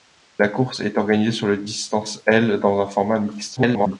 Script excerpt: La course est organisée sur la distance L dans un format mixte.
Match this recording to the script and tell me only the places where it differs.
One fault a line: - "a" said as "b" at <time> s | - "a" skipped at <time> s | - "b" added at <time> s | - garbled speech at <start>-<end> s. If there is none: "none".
- garbled speech at 3.6-4.0 s